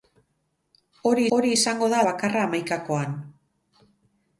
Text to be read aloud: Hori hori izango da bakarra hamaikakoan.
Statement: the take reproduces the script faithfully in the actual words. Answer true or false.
true